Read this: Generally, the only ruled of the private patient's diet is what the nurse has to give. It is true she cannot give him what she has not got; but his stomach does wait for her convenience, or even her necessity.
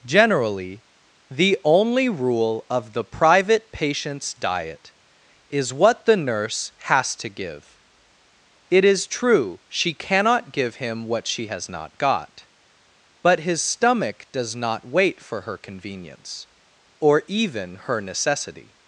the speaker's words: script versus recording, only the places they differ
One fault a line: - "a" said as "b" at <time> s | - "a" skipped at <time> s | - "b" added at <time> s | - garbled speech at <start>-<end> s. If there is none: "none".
- "ruled" said as "rule" at 2.1 s
- "not" added at 14.5 s